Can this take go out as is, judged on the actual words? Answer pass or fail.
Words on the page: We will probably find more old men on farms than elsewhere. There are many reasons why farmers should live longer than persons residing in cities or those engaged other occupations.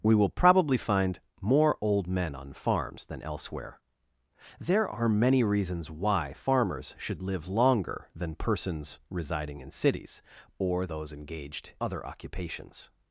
pass